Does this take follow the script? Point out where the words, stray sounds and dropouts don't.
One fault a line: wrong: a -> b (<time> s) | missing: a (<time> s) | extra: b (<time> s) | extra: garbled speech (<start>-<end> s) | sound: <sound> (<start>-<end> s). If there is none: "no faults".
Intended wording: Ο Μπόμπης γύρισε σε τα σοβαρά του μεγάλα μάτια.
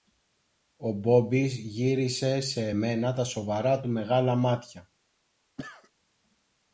extra: μένα (2.7 s)
sound: cough (5.6-5.9 s)